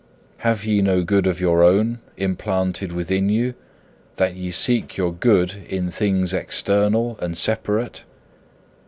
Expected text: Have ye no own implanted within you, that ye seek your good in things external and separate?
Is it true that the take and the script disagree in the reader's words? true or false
true